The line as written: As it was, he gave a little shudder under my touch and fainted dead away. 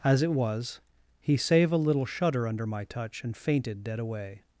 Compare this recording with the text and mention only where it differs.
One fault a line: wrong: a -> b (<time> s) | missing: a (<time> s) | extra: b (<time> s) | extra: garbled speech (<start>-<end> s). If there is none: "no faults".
wrong: gave -> save (1.4 s)